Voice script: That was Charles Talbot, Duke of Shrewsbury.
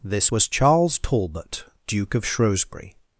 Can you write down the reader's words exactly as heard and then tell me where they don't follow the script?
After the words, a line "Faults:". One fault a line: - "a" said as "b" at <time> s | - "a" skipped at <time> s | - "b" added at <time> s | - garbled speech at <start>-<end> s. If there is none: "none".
This was Charles Talbot, Duke of Shrewsbury.
Faults:
- "That" said as "This" at 0.0 s